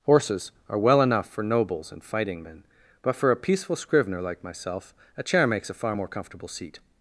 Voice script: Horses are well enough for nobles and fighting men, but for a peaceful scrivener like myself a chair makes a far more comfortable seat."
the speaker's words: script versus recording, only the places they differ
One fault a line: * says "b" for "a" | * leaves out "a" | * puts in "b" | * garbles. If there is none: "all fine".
all fine